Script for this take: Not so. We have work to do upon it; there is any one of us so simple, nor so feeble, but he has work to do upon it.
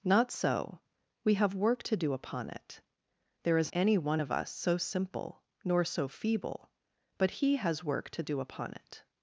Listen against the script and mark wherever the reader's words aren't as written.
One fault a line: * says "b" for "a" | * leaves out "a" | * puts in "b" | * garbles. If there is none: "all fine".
all fine